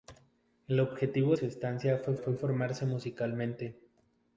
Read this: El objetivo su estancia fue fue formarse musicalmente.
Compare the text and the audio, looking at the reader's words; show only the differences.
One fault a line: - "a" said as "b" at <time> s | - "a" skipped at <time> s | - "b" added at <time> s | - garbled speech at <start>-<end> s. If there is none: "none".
none